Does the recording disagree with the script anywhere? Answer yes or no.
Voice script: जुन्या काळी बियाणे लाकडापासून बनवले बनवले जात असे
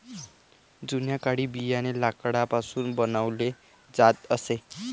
yes